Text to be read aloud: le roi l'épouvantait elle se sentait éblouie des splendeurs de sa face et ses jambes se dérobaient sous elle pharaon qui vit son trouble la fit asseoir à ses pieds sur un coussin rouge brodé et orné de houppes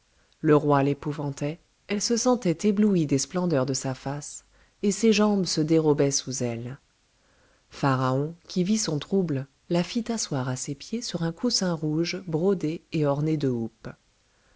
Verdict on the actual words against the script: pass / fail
pass